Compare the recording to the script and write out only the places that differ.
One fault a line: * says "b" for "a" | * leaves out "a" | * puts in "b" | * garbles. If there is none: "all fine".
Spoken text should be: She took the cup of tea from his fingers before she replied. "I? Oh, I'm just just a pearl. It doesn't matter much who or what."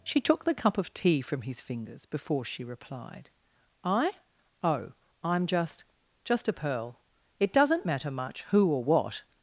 all fine